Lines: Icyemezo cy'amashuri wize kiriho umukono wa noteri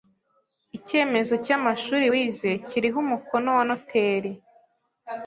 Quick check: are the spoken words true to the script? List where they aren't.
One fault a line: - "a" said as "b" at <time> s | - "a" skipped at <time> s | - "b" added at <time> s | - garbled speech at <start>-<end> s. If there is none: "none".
none